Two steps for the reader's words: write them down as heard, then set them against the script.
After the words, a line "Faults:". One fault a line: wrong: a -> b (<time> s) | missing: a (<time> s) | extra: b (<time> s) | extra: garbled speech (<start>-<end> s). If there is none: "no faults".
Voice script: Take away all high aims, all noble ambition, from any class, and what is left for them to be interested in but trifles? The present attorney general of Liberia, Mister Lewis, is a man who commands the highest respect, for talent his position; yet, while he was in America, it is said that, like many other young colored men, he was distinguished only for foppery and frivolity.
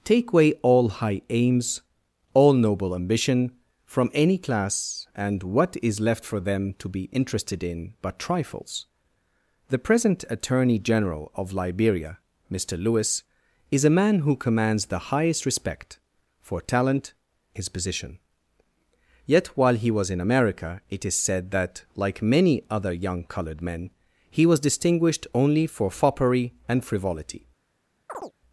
Take away all high aims, all noble ambition, from any class, and what is left for them to be interested in but trifles? The present attorney general of Liberia, Mister Lewis, is a man who commands the highest respect, for talent his position; yet, while he was in America, it is said that, like many other young colored men, he was distinguished only for foppery and frivolity.
Faults:
no faults